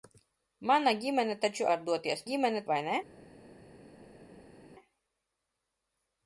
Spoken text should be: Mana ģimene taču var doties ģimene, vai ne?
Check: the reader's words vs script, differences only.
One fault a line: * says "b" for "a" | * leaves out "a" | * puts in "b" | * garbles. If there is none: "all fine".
all fine